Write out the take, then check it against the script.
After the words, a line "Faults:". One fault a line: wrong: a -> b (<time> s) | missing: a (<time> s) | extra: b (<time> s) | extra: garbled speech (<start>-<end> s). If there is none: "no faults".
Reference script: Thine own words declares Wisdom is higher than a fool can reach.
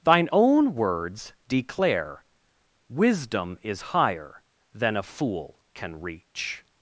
Thine own words declare Wisdom is higher than a fool can reach.
Faults:
wrong: declares -> declare (1.5 s)